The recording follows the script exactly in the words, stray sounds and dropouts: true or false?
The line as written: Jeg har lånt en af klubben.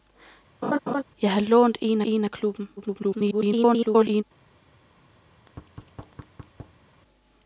false